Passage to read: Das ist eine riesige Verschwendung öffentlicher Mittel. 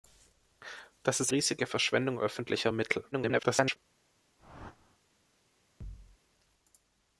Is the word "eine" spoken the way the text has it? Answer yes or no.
no